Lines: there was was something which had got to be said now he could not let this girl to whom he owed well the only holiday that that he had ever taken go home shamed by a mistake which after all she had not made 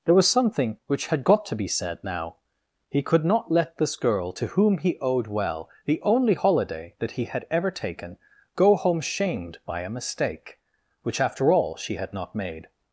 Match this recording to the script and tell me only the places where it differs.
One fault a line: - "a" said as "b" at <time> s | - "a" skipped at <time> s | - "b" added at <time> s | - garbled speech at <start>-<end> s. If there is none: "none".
- "was" skipped at 0.3 s
- "that" skipped at 7.1 s